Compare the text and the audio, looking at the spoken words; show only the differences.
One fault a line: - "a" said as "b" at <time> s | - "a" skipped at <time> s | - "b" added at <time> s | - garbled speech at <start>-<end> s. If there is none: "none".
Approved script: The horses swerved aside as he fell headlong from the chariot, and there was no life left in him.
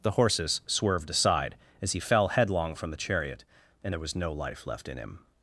none